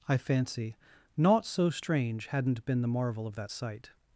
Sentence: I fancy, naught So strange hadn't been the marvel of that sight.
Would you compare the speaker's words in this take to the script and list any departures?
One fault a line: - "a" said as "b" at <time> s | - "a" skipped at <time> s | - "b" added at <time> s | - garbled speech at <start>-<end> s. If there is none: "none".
none